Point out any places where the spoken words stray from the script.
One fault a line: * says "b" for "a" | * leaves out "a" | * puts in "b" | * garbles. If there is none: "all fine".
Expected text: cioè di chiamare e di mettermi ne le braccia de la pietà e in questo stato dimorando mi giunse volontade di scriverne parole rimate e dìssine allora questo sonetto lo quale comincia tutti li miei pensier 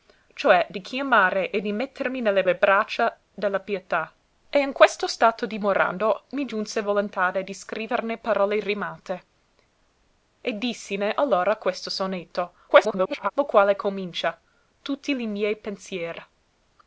* puts in "le"
* garbles